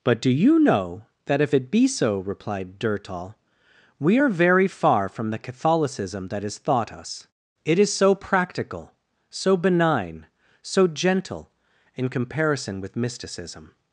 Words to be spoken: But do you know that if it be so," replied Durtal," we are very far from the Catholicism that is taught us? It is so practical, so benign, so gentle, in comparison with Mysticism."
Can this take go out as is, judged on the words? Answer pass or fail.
fail